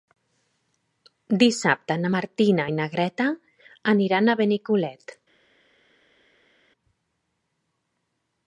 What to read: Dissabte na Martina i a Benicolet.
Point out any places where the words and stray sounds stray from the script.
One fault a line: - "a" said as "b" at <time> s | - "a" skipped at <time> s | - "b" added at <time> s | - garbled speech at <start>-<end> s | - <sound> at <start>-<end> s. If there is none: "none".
- "na Greta aniran" added at 2.8 s